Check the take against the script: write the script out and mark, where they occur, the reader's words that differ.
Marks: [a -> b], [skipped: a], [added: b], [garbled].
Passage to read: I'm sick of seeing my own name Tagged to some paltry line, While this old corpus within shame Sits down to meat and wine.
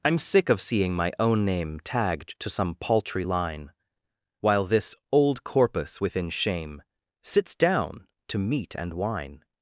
I'm sick of seeing my own name Tagged to some paltry line, While this old corpus within shame Sits down to meat and wine.